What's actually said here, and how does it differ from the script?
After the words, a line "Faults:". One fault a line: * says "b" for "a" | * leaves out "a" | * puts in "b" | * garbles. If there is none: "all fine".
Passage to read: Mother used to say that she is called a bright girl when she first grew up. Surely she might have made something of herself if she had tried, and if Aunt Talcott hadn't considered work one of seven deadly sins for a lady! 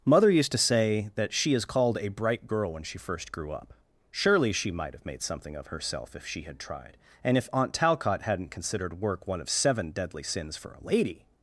Mother used to say that she is called a bright girl when she first grew up. Surely she might have made something of herself if she had tried, and if Aunt Talcott hadn't considered work one of seven deadly sins for a lady!
Faults:
all fine